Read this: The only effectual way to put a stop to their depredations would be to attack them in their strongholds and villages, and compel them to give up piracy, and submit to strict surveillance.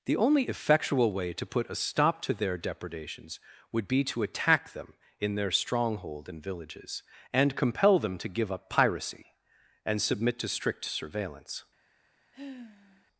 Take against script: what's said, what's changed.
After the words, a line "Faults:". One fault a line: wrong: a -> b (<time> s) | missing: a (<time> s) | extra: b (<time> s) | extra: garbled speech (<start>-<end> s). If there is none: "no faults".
The only effectual way to put a stop to their depredations would be to attack them in their stronghold and villages, and compel them to give up piracy, and submit to strict surveillance.
Faults:
wrong: strongholds -> stronghold (5.5 s)